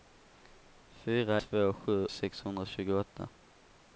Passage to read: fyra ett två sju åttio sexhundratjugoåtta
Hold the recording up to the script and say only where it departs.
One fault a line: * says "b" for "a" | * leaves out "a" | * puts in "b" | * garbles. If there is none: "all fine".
* leaves out "ett"
* leaves out "åttio"